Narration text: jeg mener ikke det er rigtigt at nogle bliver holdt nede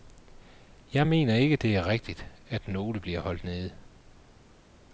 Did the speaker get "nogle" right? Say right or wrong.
right